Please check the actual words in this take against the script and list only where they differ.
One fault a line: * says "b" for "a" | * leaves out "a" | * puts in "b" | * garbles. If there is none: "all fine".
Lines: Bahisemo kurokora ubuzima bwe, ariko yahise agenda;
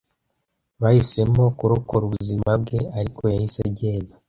all fine